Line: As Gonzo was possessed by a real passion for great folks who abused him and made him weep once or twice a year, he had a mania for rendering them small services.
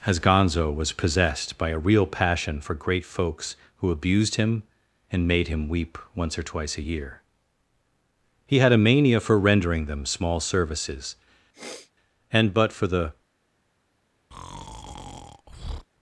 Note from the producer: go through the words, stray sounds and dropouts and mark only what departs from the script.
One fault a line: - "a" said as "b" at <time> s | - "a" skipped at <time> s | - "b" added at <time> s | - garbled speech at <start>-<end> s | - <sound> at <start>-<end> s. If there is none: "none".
- sniff at 11.5-11.9 s
- "And but for the" added at 12.3 s
- breath at 14.3-15.9 s